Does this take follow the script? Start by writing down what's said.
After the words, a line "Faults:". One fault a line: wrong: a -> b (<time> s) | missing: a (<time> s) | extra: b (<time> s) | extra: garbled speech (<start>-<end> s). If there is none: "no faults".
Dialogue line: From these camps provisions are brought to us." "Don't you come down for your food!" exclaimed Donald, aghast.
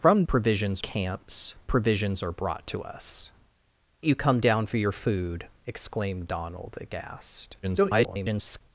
From provisions camps provisions are brought to us." "You come down for your food!" exclaimed Donald, aghast. [garbled]
Faults:
wrong: these -> provisions (0.3 s)
missing: Don't (3.3 s)
extra: garbled speech (7.6-8.6 s)